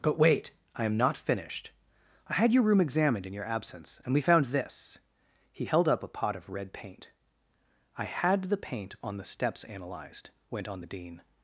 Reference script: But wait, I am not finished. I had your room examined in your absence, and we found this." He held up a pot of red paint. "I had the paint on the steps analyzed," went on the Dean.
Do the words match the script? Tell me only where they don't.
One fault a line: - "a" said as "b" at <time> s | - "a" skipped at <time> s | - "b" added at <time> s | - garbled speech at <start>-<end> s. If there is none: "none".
none